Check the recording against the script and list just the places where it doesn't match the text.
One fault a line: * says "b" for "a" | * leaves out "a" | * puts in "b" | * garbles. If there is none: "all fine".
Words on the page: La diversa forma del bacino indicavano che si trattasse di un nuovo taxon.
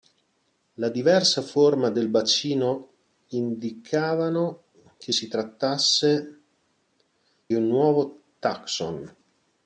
* leaves out "di"